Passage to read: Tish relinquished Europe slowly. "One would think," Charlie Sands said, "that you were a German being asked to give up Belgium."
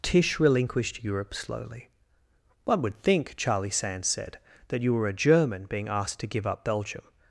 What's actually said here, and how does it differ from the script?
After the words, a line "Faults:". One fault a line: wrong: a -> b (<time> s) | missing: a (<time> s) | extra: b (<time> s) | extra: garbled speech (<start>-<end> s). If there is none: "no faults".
Tish relinquished Europe slowly. "One would think," Charlie Sands said, "that you were a German being asked to give up Belgium."
Faults:
no faults